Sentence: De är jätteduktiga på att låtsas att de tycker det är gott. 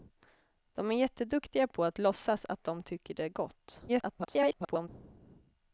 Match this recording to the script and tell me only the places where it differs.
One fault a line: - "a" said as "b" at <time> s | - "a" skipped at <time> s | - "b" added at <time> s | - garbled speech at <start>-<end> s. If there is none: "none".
- garbled speech at 3.9-4.9 s